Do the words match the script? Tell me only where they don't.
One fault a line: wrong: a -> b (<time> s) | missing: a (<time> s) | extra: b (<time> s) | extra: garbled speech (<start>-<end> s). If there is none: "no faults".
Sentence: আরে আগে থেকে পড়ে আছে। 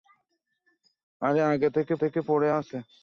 extra: থেকে (1.9 s)